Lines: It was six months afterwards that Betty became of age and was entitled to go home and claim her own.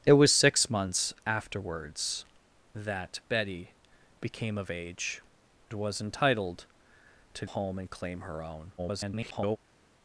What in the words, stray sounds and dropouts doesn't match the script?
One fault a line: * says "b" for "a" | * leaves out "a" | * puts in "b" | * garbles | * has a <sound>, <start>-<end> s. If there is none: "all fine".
* leaves out "and"
* leaves out "go"
* garbles